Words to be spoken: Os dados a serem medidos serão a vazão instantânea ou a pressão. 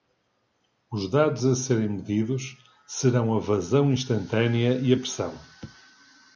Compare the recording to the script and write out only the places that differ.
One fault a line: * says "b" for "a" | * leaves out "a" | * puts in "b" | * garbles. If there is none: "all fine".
* says "e" for "ou"